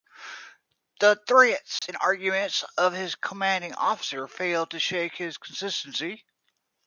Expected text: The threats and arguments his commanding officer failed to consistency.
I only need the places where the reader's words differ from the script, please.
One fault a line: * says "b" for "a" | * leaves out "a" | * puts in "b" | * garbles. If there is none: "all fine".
* puts in "of"
* puts in "shake his"